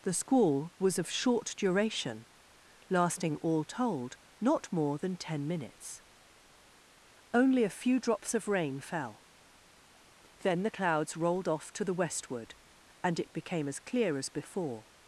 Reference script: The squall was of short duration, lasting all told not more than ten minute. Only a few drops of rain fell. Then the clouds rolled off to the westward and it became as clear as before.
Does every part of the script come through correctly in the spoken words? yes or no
no